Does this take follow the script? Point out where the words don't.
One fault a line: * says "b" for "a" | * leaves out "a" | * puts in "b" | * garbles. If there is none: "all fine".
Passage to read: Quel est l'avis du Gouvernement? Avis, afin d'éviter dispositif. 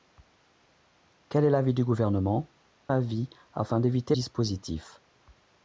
all fine